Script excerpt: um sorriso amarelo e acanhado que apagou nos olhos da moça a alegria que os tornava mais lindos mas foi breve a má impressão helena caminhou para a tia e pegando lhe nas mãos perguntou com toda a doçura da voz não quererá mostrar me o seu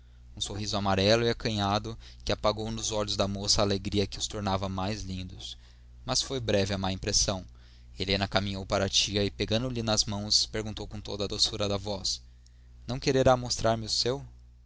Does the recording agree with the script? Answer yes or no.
yes